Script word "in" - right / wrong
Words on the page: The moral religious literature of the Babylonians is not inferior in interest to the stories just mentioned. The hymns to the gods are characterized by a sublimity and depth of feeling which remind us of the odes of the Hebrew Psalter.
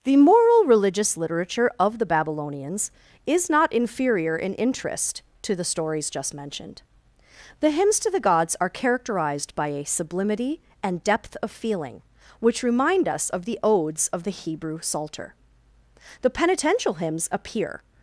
right